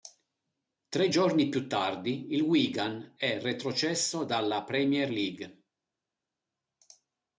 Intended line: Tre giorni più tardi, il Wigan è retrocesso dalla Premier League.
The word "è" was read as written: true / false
true